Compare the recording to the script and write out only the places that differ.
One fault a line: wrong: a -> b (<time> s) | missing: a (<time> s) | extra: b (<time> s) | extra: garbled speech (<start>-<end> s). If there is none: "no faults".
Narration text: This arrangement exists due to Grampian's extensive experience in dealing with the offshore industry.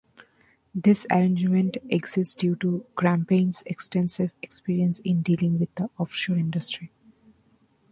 no faults